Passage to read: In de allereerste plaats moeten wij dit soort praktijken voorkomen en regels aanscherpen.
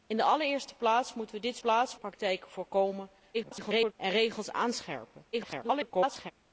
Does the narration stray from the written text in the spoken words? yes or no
yes